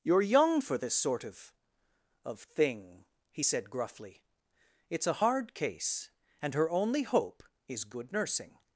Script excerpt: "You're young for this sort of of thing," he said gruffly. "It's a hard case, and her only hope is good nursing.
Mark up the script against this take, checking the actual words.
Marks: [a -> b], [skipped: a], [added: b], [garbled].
"You're young for this sort of of thing," he said gruffly. "It's a hard case, and her only hope is good nursing.